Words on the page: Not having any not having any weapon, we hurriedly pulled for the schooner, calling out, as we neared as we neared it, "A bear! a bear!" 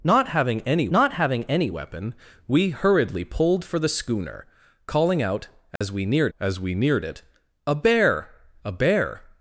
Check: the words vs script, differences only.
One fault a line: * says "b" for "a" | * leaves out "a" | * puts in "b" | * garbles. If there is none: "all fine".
all fine